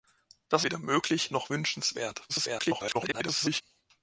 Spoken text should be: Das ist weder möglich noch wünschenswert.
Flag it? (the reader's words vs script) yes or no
yes